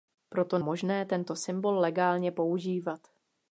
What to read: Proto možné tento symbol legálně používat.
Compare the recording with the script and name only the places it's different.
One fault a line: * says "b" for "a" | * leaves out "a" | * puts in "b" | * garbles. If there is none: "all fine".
all fine